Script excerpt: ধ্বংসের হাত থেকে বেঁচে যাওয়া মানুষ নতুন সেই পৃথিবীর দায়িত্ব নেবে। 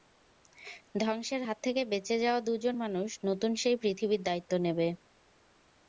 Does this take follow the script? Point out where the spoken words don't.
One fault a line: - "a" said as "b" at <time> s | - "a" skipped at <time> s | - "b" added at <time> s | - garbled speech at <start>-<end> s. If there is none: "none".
- "দুজন" added at 2.4 s